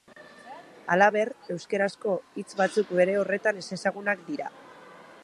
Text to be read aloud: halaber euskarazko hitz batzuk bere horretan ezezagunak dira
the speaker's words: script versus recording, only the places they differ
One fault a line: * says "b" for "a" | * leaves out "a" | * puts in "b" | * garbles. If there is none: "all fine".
all fine